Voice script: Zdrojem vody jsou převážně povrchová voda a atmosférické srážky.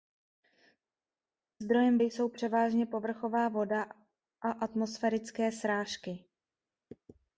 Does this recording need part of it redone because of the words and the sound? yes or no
yes